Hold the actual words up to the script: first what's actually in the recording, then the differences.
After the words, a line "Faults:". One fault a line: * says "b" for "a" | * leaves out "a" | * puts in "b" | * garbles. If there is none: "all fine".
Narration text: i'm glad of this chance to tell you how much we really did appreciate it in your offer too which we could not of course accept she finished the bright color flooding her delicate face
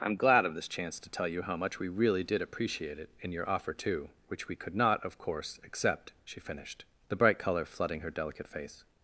i'm glad of this chance to tell you how much we really did appreciate it in your offer too which we could not of course accept she finished the bright color flooding her delicate face
Faults:
all fine